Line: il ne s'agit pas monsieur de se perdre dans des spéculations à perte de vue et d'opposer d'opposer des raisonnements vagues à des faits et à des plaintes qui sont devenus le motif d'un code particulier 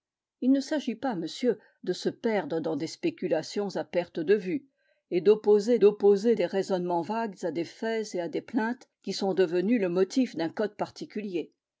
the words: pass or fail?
pass